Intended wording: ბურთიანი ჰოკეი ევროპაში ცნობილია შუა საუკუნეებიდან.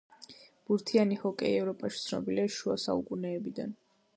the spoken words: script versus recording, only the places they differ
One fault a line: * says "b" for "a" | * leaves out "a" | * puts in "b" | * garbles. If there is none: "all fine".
all fine